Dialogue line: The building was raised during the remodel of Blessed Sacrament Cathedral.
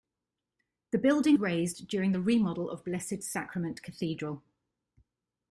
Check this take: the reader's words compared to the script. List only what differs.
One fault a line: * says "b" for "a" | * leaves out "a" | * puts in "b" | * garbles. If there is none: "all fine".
* leaves out "was"